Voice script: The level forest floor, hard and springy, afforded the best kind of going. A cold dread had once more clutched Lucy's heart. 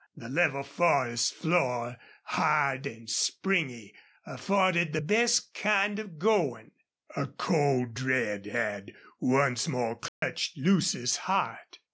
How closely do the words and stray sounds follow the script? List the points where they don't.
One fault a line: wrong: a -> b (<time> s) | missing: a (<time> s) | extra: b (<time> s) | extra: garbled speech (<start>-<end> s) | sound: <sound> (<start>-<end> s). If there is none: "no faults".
sound: dropout (10.1-10.2 s)